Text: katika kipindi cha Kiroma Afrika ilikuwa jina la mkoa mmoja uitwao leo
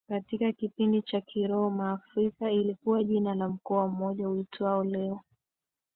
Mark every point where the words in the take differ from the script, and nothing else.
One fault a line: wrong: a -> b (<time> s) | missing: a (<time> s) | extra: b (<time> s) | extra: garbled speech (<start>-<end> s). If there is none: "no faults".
no faults